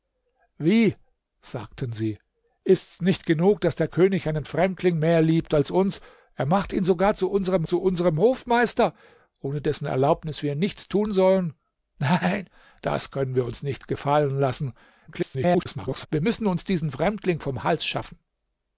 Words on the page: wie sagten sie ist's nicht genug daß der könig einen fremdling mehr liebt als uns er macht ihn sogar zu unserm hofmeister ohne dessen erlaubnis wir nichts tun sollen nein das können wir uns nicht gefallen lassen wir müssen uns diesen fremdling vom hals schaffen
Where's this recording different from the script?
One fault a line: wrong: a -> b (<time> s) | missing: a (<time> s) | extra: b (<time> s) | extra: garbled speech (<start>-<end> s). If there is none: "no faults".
extra: zu unserm (7.6 s)
extra: garbled speech (15.1-16.1 s)